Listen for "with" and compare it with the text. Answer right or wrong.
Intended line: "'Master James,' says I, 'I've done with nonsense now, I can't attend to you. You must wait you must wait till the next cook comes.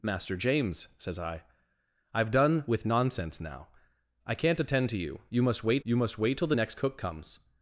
right